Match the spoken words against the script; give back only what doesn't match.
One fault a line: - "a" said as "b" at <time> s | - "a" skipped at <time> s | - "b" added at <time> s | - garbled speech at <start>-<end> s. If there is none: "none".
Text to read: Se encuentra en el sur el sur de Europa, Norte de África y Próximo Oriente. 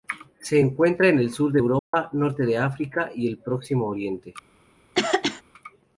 - "el sur" skipped at 1.5 s
- "el" added at 3.3 s